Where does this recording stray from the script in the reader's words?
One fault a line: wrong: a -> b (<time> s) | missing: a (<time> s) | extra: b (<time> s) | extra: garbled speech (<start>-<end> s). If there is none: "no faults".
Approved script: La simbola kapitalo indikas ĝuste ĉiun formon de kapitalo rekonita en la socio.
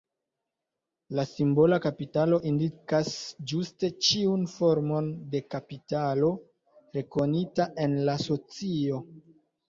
no faults